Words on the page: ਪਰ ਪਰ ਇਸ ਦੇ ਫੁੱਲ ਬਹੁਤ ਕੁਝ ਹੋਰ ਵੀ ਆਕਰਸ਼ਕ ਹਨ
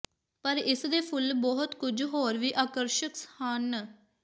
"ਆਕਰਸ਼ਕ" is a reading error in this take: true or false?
false